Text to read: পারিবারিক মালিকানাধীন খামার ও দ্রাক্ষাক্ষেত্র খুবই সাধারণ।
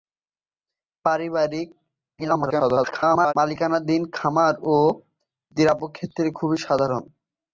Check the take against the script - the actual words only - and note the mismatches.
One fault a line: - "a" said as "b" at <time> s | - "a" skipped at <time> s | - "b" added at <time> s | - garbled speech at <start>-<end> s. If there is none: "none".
- garbled speech at 2.2-3.3 s